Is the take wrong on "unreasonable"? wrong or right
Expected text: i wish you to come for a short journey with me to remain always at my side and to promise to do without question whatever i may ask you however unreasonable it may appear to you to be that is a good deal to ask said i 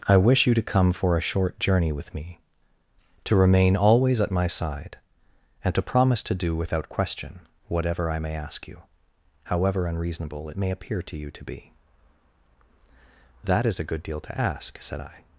right